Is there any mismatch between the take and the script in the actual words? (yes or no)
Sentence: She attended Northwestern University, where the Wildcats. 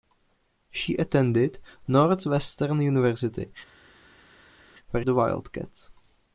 no